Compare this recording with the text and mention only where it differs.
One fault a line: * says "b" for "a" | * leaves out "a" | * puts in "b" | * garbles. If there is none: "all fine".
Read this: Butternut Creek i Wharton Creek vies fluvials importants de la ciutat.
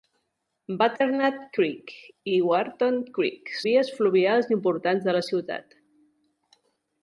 all fine